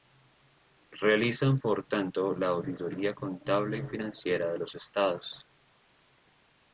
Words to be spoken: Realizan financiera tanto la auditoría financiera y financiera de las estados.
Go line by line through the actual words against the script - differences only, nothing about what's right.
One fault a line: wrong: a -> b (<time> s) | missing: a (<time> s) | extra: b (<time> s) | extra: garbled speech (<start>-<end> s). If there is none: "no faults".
wrong: financiera -> por (1.6 s)
wrong: financiera -> contable (3.1 s)
wrong: las -> los (4.6 s)